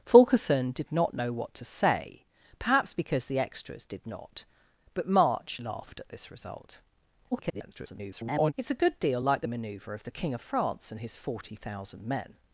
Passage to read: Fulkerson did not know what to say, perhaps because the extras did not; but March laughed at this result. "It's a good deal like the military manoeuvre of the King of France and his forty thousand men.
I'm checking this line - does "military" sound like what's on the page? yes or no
no